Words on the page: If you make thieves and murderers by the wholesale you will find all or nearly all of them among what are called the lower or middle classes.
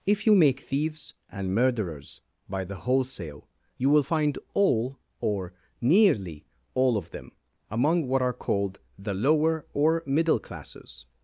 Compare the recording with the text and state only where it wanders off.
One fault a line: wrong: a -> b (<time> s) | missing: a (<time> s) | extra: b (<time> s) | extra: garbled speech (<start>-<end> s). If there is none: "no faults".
no faults